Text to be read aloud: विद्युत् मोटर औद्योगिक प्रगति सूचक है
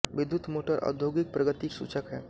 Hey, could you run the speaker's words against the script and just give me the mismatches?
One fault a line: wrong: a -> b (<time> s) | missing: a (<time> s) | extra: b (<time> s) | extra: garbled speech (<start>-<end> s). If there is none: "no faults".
no faults